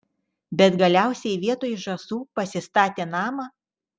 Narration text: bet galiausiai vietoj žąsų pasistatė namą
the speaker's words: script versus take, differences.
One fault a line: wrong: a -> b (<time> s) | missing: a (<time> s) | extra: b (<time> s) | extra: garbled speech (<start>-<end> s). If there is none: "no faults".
no faults